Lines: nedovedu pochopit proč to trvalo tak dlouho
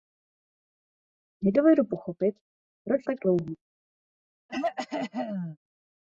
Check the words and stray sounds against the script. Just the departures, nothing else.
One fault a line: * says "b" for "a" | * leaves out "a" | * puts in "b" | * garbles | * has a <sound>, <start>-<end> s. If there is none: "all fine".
* leaves out "to trvalo"
* has a throat clearing, 4.5-5.6 s